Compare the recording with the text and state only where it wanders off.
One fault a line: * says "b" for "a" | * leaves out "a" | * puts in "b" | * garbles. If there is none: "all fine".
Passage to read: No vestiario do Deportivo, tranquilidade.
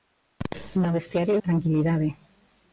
* leaves out "do Deportivo"